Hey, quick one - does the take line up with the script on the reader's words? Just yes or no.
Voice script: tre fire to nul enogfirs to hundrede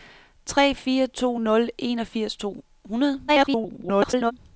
no